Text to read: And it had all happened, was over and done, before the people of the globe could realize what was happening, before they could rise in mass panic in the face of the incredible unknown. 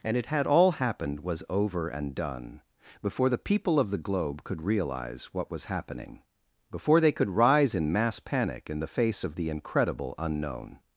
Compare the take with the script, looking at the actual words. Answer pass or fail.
pass